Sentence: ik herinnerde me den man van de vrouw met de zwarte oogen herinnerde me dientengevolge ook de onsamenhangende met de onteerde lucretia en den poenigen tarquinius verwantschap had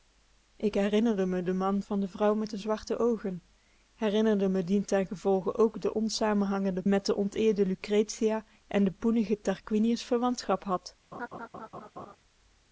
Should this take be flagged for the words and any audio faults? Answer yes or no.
yes